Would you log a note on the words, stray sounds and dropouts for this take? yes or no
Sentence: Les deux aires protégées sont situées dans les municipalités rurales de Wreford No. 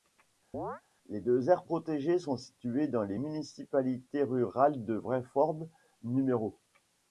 yes